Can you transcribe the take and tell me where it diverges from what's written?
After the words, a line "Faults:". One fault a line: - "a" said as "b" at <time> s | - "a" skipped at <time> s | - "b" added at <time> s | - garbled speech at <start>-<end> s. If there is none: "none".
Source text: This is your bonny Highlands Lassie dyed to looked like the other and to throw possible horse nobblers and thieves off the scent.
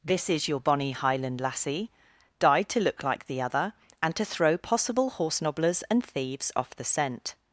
This is your bonny Highland Lassie dyed to look like the other and to throw possible horse nobblers and thieves off the scent.
Faults:
- "Highlands" said as "Highland" at 0.9 s
- "looked" said as "look" at 2.8 s